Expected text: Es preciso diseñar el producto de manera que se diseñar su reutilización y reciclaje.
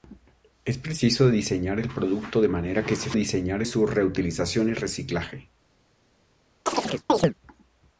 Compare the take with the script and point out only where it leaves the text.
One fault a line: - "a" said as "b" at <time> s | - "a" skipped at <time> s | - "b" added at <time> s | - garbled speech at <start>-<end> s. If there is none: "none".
none